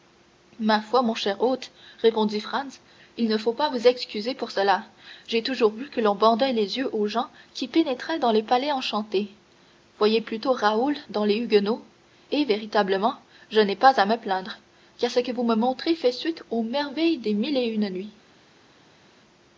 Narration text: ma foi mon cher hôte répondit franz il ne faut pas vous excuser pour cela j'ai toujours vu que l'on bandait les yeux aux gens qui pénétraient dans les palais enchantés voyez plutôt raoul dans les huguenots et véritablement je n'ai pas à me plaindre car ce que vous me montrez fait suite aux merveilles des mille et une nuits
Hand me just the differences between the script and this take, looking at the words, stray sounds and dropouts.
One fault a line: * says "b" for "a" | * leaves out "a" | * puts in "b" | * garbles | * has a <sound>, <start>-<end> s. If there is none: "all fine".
all fine